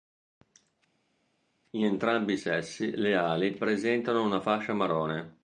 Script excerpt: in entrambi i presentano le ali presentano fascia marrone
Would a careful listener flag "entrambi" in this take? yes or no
no